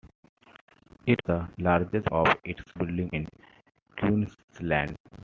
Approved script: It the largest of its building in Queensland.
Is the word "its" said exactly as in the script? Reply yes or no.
yes